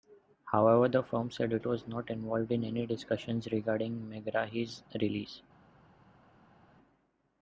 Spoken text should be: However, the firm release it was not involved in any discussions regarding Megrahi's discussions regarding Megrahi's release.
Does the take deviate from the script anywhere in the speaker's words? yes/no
yes